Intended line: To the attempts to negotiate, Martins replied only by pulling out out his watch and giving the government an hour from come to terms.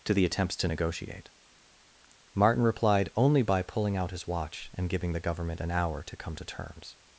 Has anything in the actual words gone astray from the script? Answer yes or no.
yes